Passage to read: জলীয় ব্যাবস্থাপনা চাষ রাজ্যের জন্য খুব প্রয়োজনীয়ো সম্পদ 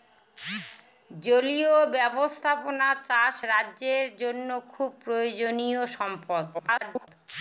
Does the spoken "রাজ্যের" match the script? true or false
true